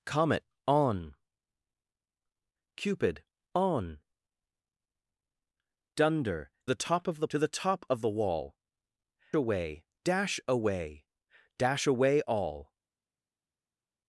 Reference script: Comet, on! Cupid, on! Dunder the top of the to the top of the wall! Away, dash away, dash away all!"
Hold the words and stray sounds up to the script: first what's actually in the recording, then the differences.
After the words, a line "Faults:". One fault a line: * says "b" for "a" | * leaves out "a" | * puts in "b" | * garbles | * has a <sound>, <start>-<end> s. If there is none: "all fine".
Comet, on! Cupid, on! Dunder the top of the to the top of the wall! Away, dash away, dash away all!"
Faults:
all fine